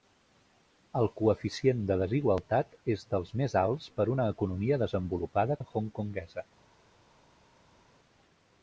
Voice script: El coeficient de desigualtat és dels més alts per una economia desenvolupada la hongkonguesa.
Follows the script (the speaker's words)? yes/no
yes